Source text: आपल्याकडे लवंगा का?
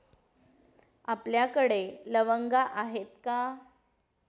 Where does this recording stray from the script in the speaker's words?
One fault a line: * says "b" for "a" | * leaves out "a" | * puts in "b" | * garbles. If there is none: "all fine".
* puts in "आहेत"